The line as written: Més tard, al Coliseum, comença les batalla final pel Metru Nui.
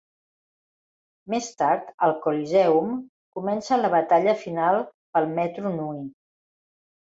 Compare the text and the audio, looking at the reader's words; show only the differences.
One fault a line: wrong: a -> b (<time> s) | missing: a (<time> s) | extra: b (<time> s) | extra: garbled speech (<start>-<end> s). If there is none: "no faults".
wrong: les -> la (3.8 s)